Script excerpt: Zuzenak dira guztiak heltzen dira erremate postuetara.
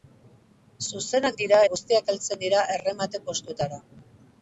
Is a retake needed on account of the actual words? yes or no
no